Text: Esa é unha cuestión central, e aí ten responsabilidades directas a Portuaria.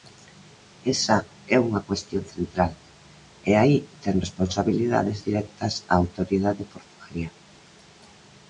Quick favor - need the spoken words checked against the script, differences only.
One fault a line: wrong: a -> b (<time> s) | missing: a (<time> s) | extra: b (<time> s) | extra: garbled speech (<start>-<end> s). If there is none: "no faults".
extra: Autoridade (6.0 s)